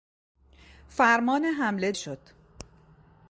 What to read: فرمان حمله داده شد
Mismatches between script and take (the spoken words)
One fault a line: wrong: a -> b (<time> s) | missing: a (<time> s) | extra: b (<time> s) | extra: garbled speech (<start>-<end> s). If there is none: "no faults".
missing: داده (1.9 s)